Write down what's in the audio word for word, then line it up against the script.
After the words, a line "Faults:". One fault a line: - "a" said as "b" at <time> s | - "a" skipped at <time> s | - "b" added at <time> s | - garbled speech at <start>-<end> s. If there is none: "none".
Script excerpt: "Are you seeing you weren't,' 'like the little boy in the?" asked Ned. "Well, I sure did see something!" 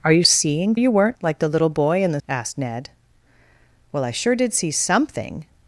"Are you seeing you weren't,' 'like the little boy in the?" asked Ned. "Well, I sure did see something!"
Faults:
none